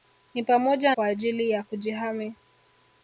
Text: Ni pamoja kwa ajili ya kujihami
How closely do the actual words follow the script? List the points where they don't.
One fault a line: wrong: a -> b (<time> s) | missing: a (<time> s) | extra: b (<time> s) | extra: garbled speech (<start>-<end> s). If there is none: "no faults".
no faults